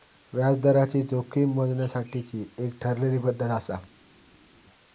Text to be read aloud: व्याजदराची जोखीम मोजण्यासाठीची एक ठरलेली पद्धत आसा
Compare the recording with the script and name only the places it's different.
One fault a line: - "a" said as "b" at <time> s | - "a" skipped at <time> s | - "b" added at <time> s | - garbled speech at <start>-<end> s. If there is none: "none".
none